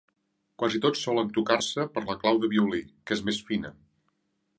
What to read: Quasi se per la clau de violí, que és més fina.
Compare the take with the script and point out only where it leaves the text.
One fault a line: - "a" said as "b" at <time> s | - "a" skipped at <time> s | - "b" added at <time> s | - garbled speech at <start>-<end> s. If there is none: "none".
- "tots solen tocar" added at 0.8 s